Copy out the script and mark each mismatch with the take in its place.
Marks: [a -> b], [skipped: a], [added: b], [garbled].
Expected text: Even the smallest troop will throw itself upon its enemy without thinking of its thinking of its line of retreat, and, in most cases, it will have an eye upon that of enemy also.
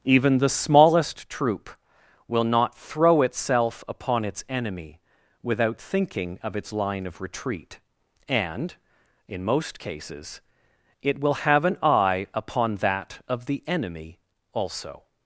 Even the smallest troop will [added: not] throw itself upon its enemy without thinking of its [skipped: thinking of its] line of retreat, and, in most cases, it will have an eye upon that of [added: the] enemy also.